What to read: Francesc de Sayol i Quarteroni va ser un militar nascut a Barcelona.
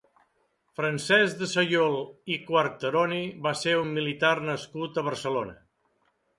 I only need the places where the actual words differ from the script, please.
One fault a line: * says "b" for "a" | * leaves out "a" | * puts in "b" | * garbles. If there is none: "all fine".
all fine